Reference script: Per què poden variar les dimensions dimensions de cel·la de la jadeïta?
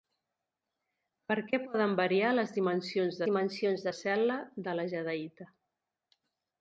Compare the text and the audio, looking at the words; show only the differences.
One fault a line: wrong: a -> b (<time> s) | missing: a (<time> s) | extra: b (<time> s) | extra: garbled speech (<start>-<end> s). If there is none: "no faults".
no faults